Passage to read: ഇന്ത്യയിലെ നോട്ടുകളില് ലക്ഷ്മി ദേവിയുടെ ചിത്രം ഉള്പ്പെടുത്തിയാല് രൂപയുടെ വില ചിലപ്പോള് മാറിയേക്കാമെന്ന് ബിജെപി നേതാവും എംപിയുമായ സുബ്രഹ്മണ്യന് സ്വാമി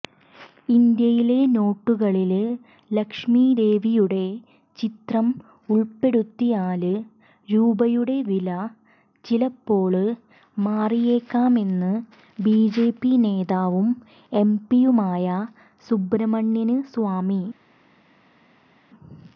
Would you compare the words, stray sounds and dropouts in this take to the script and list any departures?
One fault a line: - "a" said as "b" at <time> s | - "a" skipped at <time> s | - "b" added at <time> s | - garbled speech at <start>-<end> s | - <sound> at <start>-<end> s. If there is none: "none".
none